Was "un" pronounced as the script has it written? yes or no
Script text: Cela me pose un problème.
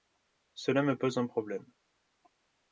yes